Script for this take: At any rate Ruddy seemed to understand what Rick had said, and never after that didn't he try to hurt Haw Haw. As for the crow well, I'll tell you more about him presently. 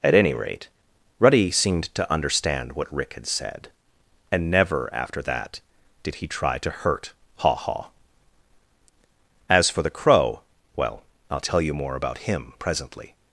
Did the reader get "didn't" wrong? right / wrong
wrong